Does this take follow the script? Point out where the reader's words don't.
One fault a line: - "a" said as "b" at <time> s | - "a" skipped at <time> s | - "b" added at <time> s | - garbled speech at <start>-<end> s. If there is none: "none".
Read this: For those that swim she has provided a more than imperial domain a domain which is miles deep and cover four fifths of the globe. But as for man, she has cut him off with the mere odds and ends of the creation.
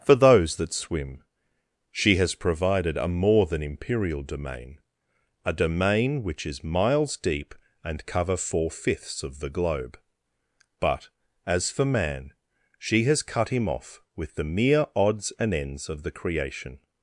none